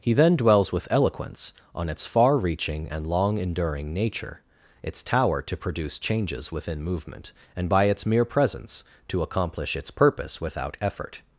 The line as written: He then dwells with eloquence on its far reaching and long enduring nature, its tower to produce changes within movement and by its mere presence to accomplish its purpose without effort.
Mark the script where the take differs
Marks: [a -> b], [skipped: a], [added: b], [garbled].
He then dwells with eloquence on its far reaching and long enduring nature, its tower to produce changes within movement and by its mere presence to accomplish its purpose without effort.